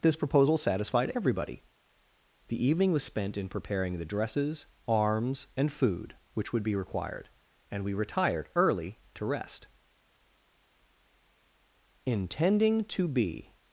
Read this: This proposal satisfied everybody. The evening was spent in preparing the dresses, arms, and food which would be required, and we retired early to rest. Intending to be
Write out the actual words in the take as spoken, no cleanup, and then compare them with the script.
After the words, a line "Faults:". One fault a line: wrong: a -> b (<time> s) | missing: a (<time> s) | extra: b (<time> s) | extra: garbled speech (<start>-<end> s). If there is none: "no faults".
This proposal satisfied everybody. The evening was spent in preparing the dresses, arms, and food which would be required, and we retired early to rest. Intending to be
Faults:
no faults